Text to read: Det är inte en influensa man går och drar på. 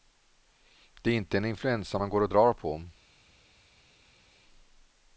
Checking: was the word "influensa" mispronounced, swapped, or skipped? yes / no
no